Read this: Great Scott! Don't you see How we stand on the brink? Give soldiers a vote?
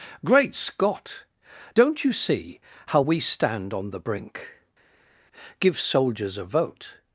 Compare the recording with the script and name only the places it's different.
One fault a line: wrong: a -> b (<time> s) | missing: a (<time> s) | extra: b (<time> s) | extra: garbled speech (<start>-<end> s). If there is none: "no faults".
no faults